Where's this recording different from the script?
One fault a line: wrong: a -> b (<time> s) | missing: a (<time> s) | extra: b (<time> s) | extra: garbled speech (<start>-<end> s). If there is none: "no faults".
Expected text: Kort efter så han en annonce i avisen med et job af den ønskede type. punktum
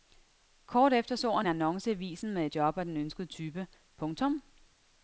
missing: en (1.5 s)